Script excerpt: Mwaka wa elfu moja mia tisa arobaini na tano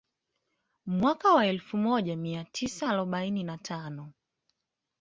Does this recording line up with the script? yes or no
yes